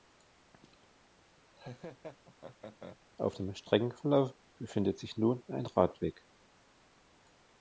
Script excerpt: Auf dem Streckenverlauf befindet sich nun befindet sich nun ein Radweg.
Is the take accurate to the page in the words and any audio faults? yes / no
no